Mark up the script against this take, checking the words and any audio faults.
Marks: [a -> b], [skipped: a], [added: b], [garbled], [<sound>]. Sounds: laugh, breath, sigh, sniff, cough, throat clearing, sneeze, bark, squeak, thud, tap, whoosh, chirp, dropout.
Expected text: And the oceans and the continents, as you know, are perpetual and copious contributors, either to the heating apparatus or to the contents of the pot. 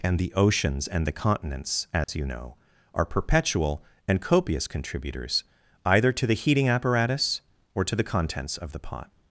And the oceans and the continents, as [dropout] you know, are perpetual and copious contributors, either to the heating apparatus or to the contents of the pot.